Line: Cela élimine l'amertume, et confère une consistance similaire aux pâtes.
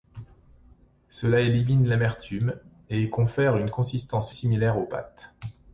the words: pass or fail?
pass